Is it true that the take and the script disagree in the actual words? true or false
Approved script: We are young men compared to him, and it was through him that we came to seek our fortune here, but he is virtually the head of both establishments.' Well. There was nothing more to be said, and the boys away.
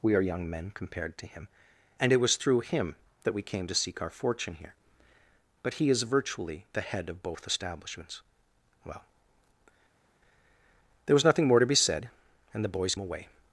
false